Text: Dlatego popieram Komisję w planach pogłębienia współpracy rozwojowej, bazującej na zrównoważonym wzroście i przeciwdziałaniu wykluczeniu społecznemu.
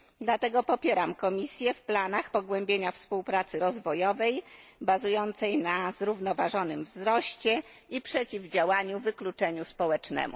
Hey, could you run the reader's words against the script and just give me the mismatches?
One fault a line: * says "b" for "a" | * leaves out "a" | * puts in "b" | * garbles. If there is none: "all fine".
all fine